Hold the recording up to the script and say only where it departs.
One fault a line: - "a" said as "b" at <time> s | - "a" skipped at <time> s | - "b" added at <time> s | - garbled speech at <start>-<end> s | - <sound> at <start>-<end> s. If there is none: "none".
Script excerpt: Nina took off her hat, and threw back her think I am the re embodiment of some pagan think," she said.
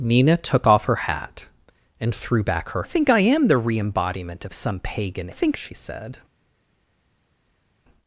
none